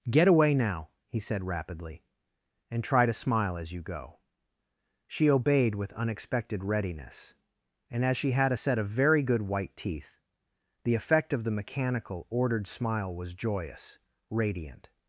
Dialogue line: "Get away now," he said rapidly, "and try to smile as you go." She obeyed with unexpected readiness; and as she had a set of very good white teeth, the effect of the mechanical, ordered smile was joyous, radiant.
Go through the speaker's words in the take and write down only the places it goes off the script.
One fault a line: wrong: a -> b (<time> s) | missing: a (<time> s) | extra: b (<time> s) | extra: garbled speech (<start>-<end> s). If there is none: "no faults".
no faults